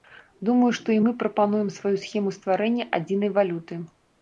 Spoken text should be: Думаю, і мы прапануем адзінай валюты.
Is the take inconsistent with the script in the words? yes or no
yes